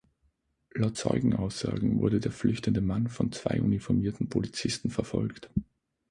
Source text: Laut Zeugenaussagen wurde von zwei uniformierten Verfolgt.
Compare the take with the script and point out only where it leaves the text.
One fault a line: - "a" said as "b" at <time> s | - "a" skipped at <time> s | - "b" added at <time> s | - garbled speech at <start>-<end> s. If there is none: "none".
- "der flüchtende Mann" added at 2.2 s
- "Polizisten" added at 4.3 s